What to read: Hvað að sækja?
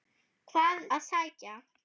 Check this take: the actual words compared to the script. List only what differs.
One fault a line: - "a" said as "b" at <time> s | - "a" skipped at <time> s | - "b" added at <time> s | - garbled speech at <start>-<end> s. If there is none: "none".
none